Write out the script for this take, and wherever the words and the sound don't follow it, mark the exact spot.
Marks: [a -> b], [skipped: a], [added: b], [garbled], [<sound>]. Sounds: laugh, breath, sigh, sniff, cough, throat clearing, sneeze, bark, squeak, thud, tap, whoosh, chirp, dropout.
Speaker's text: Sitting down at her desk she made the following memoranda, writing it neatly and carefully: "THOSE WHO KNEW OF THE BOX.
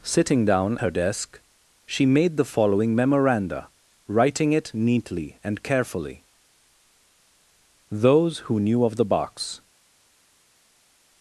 Sitting down [skipped: at] her desk she made the following memoranda, writing it neatly and carefully: "THOSE WHO KNEW OF THE BOX.